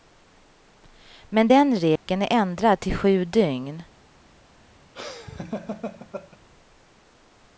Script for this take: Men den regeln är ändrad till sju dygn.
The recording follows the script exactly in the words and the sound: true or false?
false